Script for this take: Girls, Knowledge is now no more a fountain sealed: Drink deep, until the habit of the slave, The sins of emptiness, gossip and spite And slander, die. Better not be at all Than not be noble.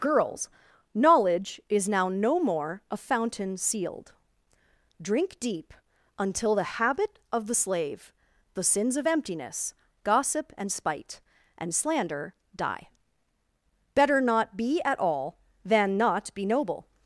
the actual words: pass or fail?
pass